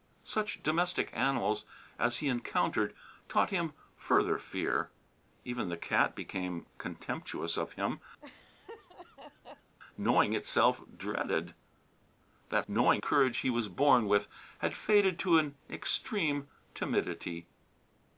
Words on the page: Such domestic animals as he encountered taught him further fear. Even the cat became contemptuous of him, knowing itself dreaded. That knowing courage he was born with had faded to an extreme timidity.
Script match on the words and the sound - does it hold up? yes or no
no